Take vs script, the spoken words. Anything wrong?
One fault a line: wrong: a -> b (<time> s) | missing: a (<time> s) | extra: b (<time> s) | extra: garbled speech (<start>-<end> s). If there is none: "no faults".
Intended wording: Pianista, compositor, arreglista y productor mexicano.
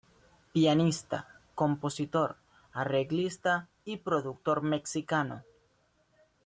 no faults